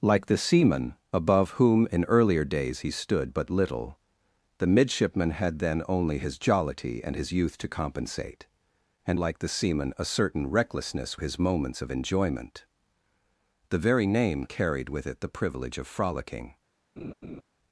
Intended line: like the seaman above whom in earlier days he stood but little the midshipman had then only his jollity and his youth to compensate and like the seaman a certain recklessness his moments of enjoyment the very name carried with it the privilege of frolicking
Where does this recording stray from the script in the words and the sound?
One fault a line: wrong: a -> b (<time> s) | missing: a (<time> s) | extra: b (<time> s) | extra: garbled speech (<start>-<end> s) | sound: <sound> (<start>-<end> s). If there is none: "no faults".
sound: laugh (17.0-17.4 s)